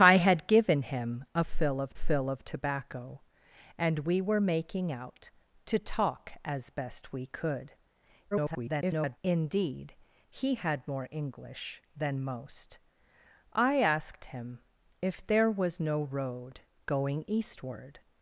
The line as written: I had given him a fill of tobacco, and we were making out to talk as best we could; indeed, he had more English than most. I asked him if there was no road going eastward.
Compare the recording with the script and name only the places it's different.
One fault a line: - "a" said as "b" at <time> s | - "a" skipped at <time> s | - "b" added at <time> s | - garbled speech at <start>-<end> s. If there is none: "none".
- "fill of" added at 1.9 s
- garbled speech at 8.3-9.2 s